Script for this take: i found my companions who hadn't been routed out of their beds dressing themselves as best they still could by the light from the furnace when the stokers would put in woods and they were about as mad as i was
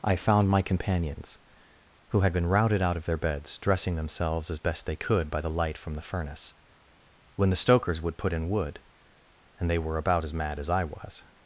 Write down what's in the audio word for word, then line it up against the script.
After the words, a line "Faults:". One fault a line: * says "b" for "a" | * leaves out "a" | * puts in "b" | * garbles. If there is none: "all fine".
i found my companions who had been routed out of their beds dressing themselves as best they could by the light from the furnace when the stokers would put in wood and they were about as mad as i was
Faults:
* says "had" for "hadn't"
* leaves out "still"
* says "wood" for "woods"